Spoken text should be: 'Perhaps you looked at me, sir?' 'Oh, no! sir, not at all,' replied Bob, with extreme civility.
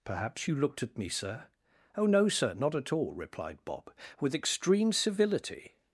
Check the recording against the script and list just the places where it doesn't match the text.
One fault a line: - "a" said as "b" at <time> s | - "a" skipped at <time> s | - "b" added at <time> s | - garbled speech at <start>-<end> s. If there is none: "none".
none